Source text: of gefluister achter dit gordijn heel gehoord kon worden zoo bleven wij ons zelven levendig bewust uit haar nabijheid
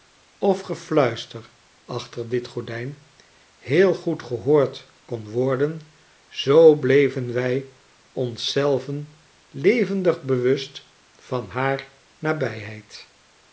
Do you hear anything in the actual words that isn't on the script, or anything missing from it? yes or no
yes